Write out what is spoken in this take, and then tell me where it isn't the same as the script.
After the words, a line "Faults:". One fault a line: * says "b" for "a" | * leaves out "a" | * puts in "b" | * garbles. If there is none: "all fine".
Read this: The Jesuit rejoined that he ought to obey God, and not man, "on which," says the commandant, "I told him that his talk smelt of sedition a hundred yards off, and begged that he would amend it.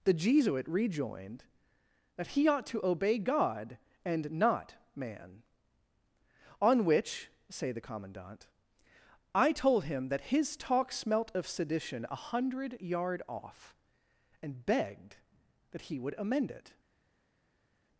The Jesuit rejoined that he ought to obey God, and not man, "on which," say the commandant, "I told him that his talk smelt of sedition a hundred yard off, and begged that he would amend it.
Faults:
* says "say" for "says"
* says "yard" for "yards"